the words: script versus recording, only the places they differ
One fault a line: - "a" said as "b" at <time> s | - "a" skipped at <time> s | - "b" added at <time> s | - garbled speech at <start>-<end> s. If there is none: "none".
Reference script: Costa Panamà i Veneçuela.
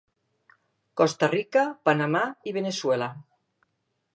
- "Rica" added at 1.3 s